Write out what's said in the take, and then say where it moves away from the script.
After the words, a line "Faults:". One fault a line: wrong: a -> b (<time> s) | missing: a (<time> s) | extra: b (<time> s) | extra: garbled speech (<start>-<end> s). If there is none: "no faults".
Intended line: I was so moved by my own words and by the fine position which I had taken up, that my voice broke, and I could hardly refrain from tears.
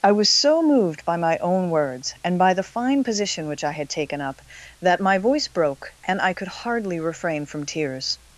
I was so moved by my own words and by the fine position which I had taken up, that my voice broke, and I could hardly refrain from tears.
Faults:
no faults